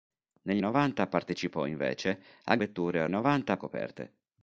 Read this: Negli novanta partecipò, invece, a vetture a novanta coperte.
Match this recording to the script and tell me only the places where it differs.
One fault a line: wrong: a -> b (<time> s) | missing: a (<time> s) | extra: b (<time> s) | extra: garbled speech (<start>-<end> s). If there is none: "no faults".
no faults